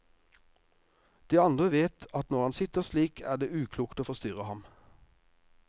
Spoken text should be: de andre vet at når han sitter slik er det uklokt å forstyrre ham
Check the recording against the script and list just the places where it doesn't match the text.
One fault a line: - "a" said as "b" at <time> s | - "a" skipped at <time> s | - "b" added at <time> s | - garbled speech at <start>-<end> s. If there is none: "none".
none